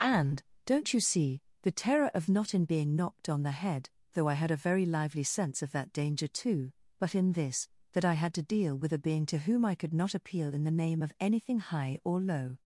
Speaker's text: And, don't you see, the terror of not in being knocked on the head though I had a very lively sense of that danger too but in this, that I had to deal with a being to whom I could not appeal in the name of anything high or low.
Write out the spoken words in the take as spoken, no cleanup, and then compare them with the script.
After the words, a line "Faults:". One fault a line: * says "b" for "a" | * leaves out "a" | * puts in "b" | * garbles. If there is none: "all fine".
And, don't you see, the terror of not in being knocked on the head though I had a very lively sense of that danger too but in this, that I had to deal with a being to whom I could not appeal in the name of anything high or low.
Faults:
all fine